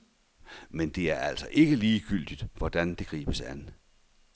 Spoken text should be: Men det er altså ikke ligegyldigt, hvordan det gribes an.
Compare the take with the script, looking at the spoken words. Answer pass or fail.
pass